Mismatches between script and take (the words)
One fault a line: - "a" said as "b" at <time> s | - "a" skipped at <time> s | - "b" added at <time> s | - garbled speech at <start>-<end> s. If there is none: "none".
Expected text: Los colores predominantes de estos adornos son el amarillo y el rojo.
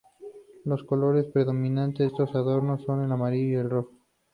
- "de" skipped at 2.1 s